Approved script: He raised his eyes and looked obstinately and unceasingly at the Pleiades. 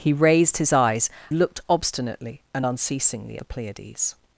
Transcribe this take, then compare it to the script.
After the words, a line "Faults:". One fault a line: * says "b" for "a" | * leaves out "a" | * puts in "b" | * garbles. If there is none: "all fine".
He raised his eyes looked obstinately and unceasingly the Pleiades.
Faults:
* leaves out "and"
* leaves out "at"